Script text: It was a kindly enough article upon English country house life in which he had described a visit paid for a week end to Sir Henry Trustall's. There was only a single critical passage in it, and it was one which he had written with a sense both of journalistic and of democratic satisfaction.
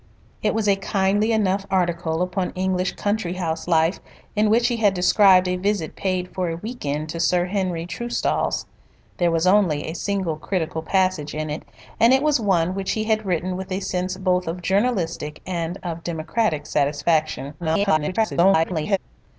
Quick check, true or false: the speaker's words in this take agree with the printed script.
false